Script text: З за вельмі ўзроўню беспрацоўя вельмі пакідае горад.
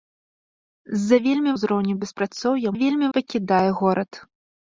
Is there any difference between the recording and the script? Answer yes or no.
no